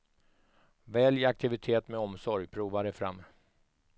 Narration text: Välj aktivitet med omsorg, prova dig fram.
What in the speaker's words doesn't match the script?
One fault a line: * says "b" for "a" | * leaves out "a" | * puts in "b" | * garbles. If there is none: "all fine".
all fine